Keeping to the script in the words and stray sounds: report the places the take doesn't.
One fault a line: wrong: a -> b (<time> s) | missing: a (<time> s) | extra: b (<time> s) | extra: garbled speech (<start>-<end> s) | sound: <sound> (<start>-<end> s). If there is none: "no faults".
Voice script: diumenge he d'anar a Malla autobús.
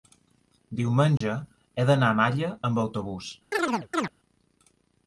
sound: dropout (1.2-1.2 s)
extra: amb (2.7 s)
sound: chirp (3.5-4.1 s)